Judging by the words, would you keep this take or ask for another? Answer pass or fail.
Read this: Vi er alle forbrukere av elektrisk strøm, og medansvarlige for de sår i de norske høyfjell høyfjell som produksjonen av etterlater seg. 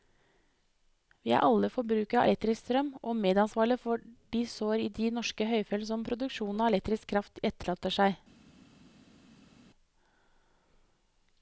fail